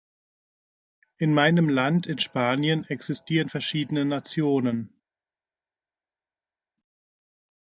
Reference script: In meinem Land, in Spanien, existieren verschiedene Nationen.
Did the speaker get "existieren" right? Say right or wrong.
right